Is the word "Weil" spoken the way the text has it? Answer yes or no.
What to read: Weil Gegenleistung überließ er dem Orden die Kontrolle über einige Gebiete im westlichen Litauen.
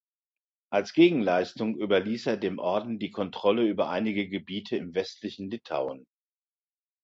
no